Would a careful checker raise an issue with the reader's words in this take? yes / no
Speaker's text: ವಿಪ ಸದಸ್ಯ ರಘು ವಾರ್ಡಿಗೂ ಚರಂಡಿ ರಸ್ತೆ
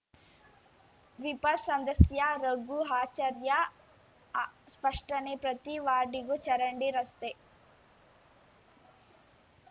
yes